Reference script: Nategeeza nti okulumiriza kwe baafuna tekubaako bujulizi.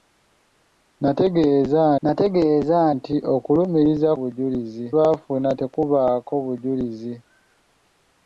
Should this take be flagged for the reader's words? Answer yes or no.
yes